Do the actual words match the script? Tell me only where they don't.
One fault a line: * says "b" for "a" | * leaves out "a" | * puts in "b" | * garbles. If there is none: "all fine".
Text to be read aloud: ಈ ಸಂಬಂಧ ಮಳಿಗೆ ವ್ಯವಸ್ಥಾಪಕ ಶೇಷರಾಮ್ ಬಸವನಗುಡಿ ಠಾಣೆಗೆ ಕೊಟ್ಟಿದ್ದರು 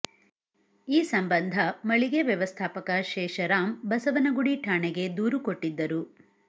* puts in "ದೂರು"